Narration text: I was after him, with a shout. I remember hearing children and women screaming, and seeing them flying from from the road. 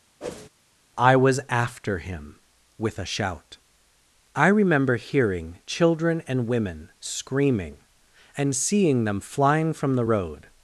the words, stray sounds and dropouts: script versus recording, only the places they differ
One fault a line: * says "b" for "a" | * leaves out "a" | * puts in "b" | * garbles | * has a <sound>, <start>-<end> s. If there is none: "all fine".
* has a whoosh, 0.2-0.5 s
* leaves out "from"